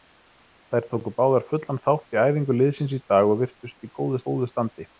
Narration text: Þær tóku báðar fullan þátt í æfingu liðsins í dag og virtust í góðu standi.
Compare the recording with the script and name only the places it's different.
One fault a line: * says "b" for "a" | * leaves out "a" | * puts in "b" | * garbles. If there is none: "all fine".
* puts in "góðu"